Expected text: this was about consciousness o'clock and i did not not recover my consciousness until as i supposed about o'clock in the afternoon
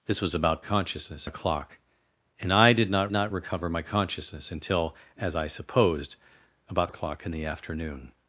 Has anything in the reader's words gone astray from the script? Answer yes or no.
no